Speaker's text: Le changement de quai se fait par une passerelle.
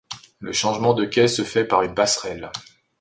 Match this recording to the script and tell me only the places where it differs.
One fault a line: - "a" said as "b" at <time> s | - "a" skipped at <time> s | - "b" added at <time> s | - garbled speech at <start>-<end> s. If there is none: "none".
none